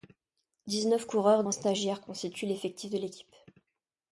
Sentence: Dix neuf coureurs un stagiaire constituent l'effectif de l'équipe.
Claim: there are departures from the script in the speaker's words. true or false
false